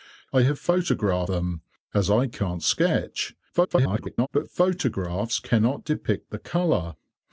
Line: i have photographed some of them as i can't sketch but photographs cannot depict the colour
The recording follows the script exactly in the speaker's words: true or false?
false